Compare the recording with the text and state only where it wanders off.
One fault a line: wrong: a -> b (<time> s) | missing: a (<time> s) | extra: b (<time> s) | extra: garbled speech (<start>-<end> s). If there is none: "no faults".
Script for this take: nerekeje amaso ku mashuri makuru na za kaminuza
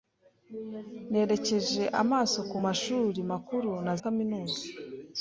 missing: za (3.9 s)